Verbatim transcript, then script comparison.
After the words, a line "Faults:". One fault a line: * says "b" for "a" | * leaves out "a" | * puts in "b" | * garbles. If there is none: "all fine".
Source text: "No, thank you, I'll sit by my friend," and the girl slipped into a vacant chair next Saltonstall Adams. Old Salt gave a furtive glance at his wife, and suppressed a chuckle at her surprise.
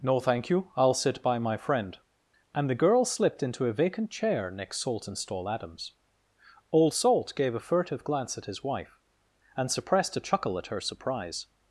"No, thank you, I'll sit by my friend," and the girl slipped into a vacant chair next Saltonstall Adams. Old Salt gave a furtive glance at his wife, and suppressed a chuckle at her surprise.
Faults:
all fine